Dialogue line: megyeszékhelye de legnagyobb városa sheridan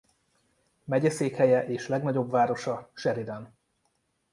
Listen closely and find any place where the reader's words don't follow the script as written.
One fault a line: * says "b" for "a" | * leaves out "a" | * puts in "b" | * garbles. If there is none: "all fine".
* says "és" for "de"